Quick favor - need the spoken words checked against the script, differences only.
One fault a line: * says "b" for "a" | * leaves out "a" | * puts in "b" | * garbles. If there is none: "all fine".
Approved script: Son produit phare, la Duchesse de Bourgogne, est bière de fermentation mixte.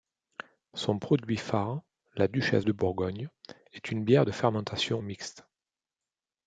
* puts in "une"